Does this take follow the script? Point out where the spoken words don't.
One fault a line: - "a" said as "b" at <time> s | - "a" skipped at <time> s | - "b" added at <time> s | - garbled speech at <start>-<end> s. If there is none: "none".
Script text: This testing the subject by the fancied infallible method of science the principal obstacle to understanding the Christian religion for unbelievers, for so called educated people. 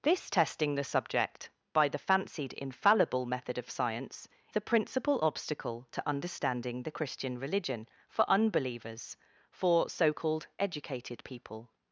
none